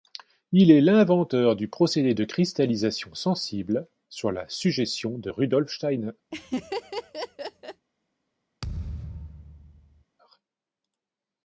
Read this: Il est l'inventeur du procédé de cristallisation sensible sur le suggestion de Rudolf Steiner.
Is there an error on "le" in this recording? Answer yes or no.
yes